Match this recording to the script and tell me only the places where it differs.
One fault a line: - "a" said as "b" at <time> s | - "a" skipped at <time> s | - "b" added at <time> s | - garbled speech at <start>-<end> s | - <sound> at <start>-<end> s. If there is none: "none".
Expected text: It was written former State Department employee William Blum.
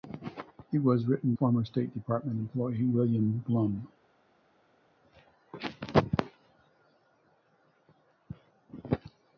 none